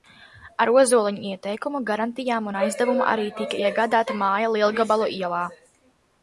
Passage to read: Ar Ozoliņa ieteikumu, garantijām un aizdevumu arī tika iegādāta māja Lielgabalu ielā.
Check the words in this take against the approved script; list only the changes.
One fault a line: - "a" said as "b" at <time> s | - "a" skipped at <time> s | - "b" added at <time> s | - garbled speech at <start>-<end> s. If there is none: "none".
none